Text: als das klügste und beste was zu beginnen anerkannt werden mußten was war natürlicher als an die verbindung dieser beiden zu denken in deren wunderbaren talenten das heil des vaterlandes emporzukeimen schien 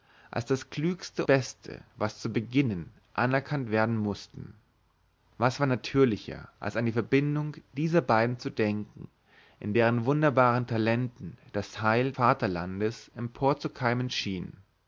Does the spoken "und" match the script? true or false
false